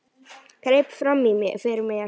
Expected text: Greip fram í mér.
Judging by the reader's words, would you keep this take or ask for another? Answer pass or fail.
fail